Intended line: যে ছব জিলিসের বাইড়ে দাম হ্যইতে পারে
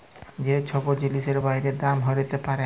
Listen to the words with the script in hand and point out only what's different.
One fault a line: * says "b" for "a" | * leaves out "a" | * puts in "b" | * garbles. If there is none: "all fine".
all fine